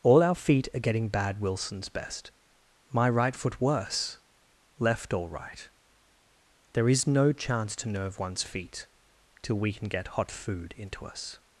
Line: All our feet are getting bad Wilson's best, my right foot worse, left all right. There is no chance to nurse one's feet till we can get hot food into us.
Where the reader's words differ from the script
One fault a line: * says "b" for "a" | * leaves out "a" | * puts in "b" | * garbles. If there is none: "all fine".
* says "nerve" for "nurse"